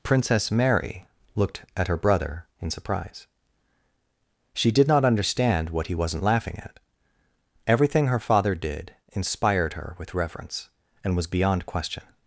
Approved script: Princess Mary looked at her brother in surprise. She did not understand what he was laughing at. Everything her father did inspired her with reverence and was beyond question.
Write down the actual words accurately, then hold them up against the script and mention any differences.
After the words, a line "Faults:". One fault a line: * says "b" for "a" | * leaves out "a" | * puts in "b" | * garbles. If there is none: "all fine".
Princess Mary looked at her brother in surprise. She did not understand what he wasn't laughing at. Everything her father did inspired her with reverence and was beyond question.
Faults:
* says "wasn't" for "was"